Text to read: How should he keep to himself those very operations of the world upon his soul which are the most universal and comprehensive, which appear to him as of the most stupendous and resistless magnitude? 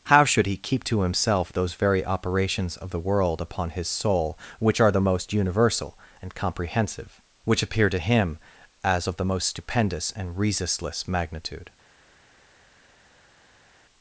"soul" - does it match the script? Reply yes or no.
yes